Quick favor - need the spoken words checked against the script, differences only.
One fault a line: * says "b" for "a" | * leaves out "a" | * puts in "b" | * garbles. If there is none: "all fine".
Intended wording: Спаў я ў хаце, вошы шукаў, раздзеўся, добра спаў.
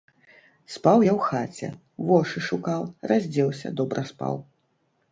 all fine